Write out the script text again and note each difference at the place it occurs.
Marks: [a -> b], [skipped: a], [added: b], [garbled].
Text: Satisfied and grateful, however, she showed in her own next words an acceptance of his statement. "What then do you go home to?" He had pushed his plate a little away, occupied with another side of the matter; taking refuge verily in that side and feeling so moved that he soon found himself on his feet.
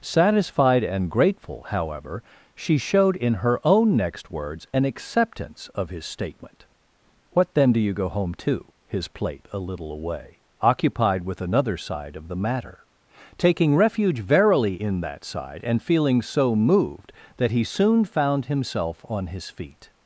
Satisfied and grateful, however, she showed in her own next words an acceptance of his statement. "What then do you go home to?" [skipped: He had pushed] his plate a little away, occupied with another side of the matter; taking refuge verily in that side and feeling so moved that he soon found himself on his feet.